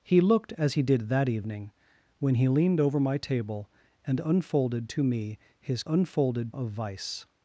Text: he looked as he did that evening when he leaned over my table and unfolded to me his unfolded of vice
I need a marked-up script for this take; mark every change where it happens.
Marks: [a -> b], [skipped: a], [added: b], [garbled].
he looked as he did that evening when he leaned over my table and unfolded to me his unfolded of vice